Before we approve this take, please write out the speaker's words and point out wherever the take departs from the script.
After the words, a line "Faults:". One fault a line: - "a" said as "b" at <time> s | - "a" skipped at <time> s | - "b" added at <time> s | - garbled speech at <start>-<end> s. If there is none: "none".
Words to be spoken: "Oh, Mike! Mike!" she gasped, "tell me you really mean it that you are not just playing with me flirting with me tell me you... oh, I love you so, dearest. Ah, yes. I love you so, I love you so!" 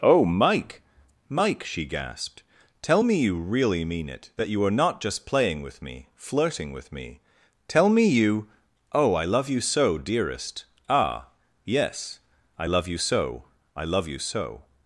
"Oh, Mike! Mike!" she gasped, "tell me you really mean it that you are not just playing with me flirting with me tell me you... oh, I love you so, dearest. Ah, yes. I love you so, I love you so!"
Faults:
none